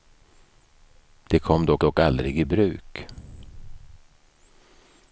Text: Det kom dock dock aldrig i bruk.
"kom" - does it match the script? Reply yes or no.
yes